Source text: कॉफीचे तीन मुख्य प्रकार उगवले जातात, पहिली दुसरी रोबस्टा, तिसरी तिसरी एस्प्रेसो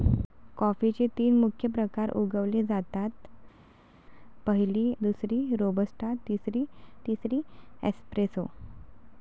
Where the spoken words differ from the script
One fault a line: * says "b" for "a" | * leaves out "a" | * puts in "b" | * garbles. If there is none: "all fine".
all fine